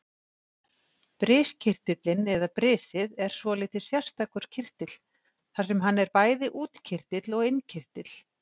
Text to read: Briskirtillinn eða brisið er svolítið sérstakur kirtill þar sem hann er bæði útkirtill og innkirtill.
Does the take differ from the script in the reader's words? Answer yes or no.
no